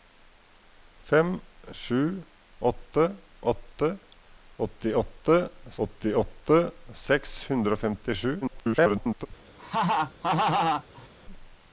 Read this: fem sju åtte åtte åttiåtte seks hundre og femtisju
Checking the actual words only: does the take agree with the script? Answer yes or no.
no